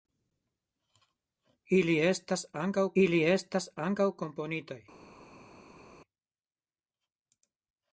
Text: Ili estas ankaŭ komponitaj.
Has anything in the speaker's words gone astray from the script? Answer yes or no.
yes